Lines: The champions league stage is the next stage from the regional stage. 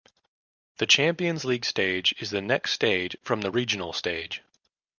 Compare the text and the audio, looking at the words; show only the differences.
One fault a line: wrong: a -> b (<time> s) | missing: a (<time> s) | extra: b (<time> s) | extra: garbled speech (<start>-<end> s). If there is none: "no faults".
no faults